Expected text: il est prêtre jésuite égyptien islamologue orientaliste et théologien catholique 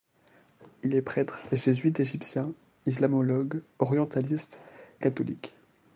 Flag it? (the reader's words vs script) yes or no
yes